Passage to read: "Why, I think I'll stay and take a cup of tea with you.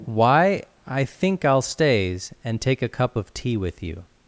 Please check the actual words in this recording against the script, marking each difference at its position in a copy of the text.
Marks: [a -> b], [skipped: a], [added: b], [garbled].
"Why, I think I'll [stay -> stays] and take a cup of tea with you.